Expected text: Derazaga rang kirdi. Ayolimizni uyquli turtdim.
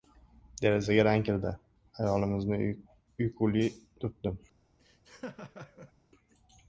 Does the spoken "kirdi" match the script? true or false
true